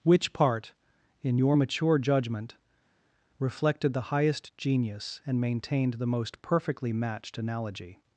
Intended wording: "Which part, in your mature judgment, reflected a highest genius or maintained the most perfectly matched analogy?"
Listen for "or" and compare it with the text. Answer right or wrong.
wrong